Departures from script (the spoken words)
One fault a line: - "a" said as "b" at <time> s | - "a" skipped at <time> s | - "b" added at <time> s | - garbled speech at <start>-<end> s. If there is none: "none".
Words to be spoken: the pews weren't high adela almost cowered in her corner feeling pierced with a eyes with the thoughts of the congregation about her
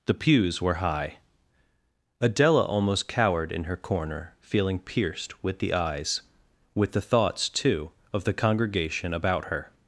- "weren't" said as "were" at 0.6 s
- "a" said as "the" at 5.6 s
- "too" added at 7.5 s